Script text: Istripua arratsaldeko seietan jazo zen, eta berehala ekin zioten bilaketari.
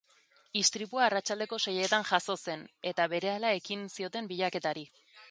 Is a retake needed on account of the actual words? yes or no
no